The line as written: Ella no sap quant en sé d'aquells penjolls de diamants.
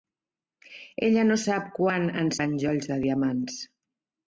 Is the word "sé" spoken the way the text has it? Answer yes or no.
no